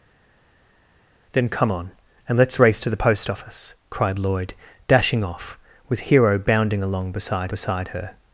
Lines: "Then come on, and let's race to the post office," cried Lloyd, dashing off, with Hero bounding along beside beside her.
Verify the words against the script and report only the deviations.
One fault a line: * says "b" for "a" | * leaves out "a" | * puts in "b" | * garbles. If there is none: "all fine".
all fine